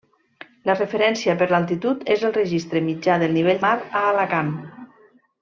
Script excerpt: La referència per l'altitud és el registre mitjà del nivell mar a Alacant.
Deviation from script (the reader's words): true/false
false